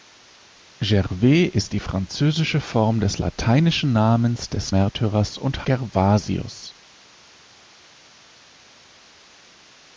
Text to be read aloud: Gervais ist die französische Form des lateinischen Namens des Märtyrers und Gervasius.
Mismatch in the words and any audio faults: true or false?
false